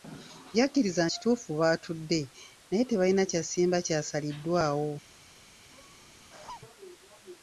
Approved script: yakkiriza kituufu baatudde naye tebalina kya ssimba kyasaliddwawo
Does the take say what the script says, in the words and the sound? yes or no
no